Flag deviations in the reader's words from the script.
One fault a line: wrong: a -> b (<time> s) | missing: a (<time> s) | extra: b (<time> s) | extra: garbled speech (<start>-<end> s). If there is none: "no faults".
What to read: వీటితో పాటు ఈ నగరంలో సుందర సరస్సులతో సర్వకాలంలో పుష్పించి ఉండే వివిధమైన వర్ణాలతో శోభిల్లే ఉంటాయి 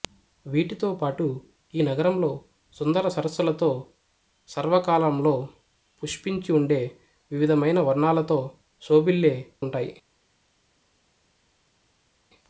no faults